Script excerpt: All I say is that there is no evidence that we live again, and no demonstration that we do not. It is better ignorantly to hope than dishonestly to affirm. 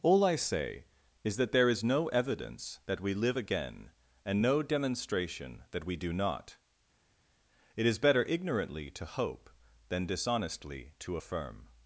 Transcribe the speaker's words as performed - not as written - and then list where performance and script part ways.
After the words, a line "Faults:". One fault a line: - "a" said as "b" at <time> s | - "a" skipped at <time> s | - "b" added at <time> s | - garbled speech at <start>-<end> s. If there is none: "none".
All I say is that there is no evidence that we live again, and no demonstration that we do not. It is better ignorantly to hope than dishonestly to affirm.
Faults:
none